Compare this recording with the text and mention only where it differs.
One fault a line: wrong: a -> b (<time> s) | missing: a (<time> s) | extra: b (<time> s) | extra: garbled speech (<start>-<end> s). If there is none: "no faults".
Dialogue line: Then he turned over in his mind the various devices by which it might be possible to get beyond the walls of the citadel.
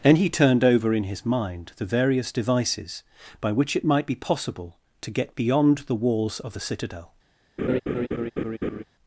no faults